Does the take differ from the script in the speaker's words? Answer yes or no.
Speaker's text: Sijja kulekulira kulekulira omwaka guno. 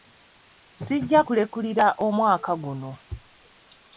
yes